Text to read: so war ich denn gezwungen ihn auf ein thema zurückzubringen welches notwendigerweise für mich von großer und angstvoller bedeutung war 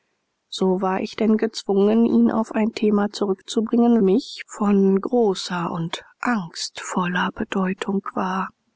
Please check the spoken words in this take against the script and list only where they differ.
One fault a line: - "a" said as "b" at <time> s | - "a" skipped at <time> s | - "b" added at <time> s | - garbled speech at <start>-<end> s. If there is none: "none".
- "welches notwendigerweise für" skipped at 4.0 s